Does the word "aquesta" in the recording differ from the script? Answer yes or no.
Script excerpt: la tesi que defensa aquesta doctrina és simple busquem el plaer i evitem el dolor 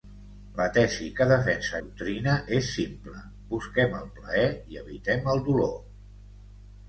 yes